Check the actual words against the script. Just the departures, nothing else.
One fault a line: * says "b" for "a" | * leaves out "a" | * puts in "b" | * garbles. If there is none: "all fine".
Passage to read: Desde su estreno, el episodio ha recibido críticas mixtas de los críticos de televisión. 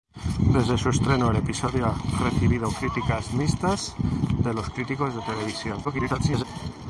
* garbles